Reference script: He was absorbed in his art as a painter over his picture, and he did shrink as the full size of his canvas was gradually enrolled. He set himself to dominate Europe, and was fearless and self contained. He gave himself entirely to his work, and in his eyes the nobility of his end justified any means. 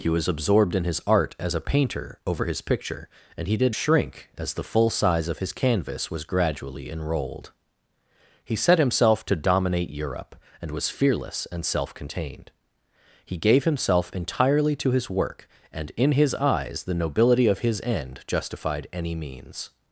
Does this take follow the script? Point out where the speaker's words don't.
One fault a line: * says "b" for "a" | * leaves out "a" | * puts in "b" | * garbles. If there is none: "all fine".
all fine